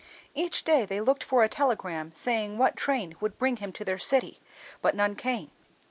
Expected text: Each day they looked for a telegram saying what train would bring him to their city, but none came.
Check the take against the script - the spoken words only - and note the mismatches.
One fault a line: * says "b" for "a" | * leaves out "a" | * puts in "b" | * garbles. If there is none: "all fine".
all fine